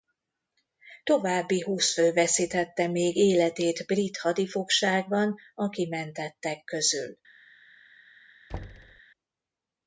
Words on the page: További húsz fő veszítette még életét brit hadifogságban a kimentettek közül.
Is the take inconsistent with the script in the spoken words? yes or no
no